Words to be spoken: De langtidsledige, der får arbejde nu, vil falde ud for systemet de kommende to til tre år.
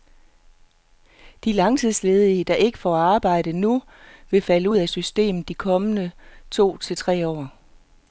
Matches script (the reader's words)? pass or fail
fail